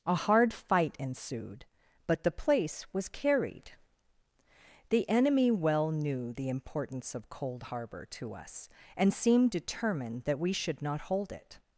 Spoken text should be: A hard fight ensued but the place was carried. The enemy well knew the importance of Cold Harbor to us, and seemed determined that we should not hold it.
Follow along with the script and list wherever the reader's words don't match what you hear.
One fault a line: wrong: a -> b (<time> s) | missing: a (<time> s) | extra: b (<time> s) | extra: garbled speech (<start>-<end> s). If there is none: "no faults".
no faults